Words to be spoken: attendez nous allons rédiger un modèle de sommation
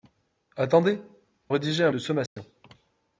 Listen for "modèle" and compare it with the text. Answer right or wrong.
wrong